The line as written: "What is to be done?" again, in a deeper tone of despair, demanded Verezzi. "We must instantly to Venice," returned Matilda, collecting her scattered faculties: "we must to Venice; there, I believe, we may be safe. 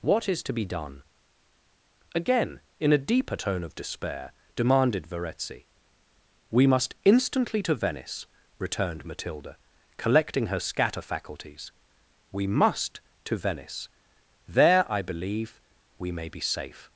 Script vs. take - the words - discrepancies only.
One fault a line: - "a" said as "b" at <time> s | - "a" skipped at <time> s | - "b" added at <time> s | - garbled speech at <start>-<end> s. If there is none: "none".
- "scattered" said as "scatter" at 10.6 s